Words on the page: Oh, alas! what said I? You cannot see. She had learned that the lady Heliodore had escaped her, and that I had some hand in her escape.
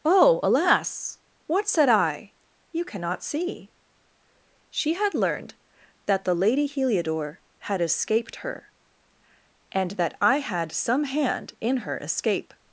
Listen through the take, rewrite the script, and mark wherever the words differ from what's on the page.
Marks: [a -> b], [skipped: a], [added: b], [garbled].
Oh, alas! what said I? You cannot see. She had learned that the lady Heliodore had escaped her, and that I had some hand in her escape.